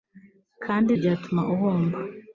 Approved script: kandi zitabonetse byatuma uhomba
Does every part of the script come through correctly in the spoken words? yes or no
no